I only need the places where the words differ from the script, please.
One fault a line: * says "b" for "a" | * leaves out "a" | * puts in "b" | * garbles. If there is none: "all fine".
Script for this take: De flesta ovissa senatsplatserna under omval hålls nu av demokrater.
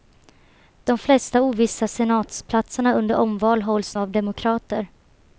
* leaves out "nu"